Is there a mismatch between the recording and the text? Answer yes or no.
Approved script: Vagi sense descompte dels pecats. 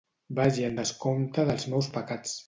yes